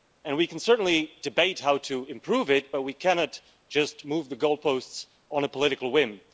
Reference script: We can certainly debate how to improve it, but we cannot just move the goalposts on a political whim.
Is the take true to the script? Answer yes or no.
yes